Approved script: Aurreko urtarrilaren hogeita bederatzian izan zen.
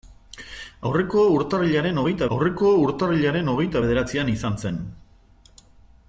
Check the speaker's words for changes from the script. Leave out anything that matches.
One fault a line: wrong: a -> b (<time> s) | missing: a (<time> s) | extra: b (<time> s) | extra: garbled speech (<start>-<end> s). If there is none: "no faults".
extra: aurreko urtarrilaren hogeita (2.4 s)